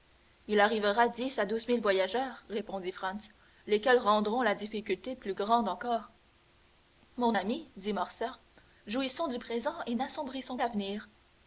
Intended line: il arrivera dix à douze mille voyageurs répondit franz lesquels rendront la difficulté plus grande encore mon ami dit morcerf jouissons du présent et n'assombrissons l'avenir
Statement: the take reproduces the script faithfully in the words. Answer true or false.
true